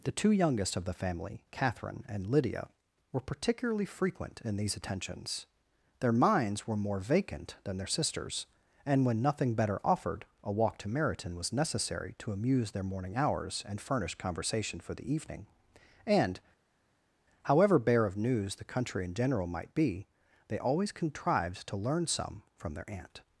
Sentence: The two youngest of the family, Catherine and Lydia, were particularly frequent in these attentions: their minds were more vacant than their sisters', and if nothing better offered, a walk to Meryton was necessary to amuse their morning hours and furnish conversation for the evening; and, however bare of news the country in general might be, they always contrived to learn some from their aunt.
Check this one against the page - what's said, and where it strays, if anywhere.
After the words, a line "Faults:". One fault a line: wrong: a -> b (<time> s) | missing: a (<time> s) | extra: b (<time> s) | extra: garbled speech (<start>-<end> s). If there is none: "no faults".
The two youngest of the family, Catherine and Lydia, were particularly frequent in these attentions: their minds were more vacant than their sisters', and when nothing better offered, a walk to Meryton was necessary to amuse their morning hours and furnish conversation for the evening; and, however bare of news the country in general might be, they always contrived to learn some from their aunt.
Faults:
wrong: if -> when (9.0 s)